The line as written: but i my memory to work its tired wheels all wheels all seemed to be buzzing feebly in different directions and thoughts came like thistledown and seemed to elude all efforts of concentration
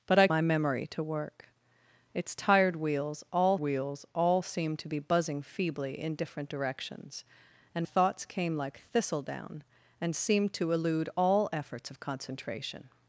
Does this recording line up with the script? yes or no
yes